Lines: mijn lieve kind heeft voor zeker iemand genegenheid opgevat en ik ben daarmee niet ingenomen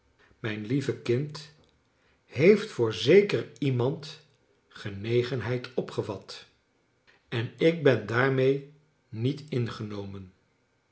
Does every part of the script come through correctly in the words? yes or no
yes